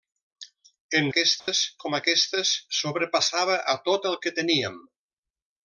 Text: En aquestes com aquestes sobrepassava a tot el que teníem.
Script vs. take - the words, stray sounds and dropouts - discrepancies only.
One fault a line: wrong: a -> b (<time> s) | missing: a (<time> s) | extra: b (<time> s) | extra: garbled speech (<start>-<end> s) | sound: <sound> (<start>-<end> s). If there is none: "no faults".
sound: dropout (1.4-1.5 s)